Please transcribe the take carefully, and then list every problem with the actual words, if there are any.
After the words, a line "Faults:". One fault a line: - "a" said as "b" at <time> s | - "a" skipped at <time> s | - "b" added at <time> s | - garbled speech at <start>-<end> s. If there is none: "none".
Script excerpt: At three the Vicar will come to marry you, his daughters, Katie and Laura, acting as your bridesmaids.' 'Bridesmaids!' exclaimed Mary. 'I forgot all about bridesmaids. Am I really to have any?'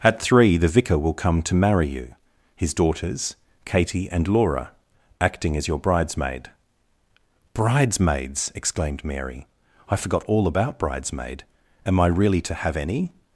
At three the Vicar will come to marry you, his daughters, Katie and Laura, acting as your bridesmaid.' 'Bridesmaids!' exclaimed Mary. 'I forgot all about bridesmaid. Am I really to have any?'
Faults:
- "bridesmaids" said as "bridesmaid" at 5.8 s
- "bridesmaids" said as "bridesmaid" at 10.8 s